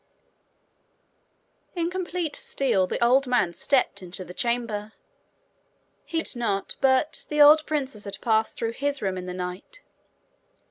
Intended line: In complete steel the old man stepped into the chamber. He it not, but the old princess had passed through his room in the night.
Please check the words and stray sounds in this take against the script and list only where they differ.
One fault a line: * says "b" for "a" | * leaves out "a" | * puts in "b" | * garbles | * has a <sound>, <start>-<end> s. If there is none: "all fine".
all fine